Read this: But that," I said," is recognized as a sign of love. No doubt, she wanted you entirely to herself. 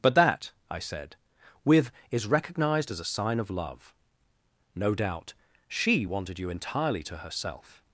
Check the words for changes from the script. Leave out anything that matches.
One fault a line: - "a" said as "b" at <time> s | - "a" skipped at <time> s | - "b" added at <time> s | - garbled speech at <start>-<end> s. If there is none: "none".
- "with" added at 1.6 s